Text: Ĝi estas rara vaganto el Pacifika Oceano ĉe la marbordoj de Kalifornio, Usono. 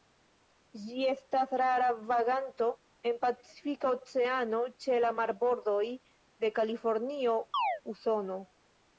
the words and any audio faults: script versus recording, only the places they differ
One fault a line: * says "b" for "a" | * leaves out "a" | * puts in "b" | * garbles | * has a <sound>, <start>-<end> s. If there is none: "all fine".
* says "en" for "el"
* has a chirp, 7.5-7.8 s